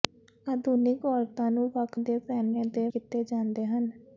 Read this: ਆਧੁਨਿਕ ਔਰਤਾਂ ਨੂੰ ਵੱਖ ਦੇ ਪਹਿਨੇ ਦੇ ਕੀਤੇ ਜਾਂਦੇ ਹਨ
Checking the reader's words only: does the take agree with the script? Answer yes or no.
yes